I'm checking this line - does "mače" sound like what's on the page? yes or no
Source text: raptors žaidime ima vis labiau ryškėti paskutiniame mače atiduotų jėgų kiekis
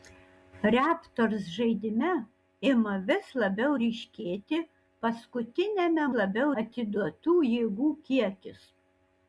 no